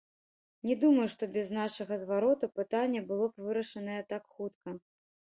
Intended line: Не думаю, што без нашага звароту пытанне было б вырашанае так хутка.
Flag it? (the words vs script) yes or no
no